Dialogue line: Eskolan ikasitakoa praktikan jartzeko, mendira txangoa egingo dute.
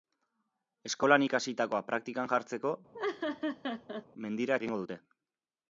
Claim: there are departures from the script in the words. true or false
true